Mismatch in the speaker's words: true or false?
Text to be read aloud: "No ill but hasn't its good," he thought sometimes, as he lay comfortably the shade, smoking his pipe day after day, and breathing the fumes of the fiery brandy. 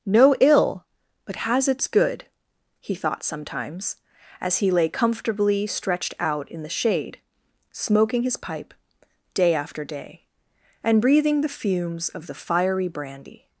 true